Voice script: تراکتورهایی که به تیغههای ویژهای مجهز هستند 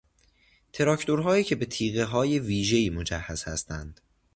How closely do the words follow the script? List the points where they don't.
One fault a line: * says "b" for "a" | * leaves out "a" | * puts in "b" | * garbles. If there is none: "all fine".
all fine